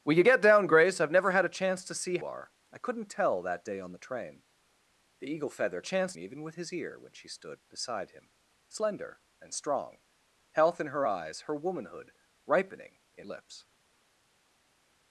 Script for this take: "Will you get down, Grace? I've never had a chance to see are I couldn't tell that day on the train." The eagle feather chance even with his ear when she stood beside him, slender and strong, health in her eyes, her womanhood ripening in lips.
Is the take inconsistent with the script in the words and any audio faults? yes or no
no